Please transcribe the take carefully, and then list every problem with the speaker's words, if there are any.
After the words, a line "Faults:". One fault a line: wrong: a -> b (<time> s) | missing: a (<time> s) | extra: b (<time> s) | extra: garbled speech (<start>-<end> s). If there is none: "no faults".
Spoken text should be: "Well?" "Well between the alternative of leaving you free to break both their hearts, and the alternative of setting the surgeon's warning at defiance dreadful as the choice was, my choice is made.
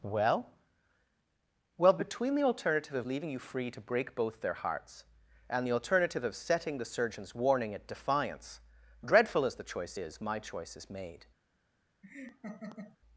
"Well?" "Well between the alternative of leaving you free to break both their hearts, and the alternative of setting the surgeon's warning at defiance dreadful as the choice is, my choice is made.
Faults:
wrong: was -> is (9.9 s)